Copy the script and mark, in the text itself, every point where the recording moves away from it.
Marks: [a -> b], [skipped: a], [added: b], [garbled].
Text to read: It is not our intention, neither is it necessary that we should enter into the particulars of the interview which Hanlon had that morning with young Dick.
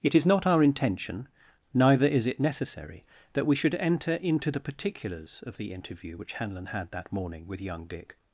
It is not our intention, neither is it necessary that we should enter into the particulars of the interview which Hanlon had that morning with young Dick.